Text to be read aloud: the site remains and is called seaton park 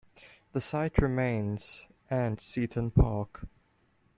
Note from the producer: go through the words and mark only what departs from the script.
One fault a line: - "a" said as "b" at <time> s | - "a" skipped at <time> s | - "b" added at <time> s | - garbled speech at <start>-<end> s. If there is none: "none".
- "is called" skipped at 2.4 s